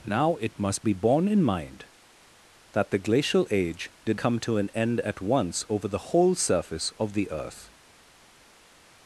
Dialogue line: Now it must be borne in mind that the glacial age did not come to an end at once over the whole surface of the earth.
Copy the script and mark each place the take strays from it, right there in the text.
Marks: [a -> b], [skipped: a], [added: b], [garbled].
Now it must be borne in mind that the glacial age did [skipped: not] come to an end at once over the whole surface of the earth.